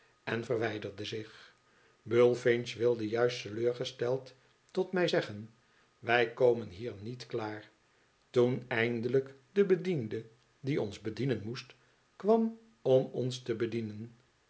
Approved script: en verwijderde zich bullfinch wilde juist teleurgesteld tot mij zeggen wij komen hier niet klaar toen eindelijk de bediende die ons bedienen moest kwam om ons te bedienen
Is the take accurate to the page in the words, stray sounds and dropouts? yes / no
yes